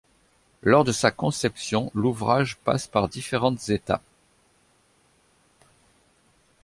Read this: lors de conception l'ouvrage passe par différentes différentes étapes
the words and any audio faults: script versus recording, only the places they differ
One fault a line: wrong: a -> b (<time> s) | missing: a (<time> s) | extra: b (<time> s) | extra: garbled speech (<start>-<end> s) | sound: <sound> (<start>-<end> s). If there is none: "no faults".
extra: sa (0.9 s)
missing: différentes (3.7 s)